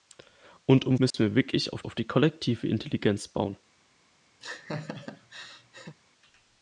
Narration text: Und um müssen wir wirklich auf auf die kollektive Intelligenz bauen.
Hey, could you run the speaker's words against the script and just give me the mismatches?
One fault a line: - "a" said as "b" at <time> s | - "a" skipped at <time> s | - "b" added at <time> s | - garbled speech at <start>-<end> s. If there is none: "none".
none